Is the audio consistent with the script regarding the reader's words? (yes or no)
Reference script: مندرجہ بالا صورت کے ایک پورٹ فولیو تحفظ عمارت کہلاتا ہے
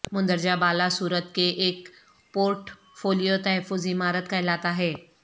yes